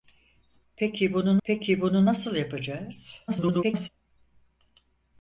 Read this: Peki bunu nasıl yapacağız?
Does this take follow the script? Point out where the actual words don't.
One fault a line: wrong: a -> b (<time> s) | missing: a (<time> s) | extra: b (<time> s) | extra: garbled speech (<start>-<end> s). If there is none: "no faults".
extra: peki bunu (1.4 s)
extra: garbled speech (3.3-3.9 s)